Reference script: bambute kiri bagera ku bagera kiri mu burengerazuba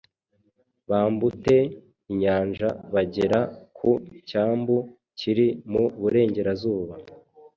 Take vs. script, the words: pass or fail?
fail